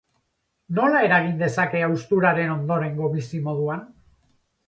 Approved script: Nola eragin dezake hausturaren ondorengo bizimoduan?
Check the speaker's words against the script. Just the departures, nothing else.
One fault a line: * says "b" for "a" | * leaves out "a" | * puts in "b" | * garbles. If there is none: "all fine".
all fine